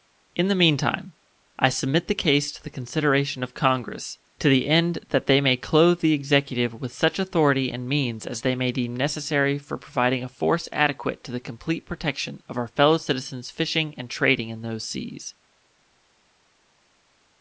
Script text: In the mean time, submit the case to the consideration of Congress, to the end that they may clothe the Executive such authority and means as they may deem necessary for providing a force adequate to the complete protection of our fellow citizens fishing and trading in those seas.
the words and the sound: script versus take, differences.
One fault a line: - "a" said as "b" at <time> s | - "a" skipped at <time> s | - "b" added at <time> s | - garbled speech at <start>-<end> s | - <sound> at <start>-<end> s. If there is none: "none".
- "I" added at 1.6 s
- "with" added at 6.7 s